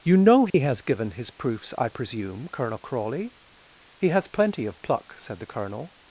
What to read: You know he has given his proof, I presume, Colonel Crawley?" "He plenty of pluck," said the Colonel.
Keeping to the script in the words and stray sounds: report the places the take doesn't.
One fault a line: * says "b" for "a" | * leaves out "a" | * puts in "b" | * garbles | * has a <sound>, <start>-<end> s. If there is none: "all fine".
* has a dropout, 0.5-0.5 s
* says "proofs" for "proof"
* puts in "has"